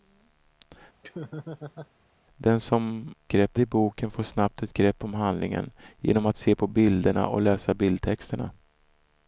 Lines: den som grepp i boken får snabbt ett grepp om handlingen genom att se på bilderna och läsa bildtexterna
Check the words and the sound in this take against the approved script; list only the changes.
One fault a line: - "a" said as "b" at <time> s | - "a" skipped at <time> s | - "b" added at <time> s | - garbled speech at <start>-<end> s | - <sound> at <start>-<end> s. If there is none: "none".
- laugh at 1.0-1.9 s